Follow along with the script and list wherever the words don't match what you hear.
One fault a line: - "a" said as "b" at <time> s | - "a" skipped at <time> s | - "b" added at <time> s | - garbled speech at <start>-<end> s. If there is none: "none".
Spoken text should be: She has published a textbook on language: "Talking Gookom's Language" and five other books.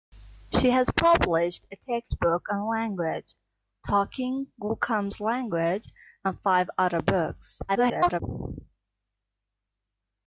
- garbled speech at 7.7-8.2 s